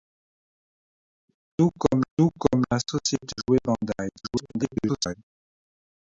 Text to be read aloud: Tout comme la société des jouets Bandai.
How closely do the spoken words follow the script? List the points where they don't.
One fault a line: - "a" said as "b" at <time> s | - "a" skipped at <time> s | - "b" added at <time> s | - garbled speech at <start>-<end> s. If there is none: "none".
- "tout comme" added at 2.2 s
- "des" skipped at 3.3 s
- garbled speech at 4.2-5.1 s